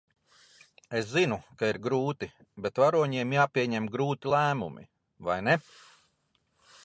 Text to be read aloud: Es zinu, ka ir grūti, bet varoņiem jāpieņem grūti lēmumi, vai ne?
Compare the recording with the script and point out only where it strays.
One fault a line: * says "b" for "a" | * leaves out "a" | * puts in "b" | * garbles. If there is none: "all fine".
all fine